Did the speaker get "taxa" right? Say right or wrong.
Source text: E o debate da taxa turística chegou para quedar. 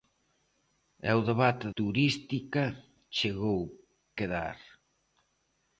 wrong